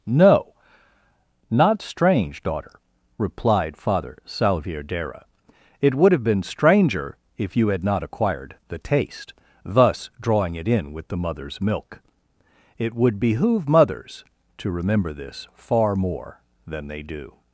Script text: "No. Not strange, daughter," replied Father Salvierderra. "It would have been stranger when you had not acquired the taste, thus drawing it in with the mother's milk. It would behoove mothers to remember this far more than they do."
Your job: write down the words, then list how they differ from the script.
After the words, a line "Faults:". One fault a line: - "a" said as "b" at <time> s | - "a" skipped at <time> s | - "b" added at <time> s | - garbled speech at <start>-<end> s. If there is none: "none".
"No. Not strange, daughter," replied Father Salvierderra. "It would have been stranger if you had not acquired the taste, thus drawing it in with the mother's milk. It would behoove mothers to remember this far more than they do."
Faults:
- "when" said as "if" at 7.4 s